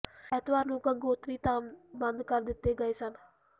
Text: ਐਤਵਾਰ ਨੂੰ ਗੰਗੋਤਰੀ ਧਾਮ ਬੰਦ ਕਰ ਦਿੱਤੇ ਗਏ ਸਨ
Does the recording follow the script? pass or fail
pass